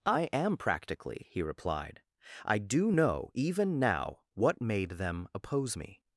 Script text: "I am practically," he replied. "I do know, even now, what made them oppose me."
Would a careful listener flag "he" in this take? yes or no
no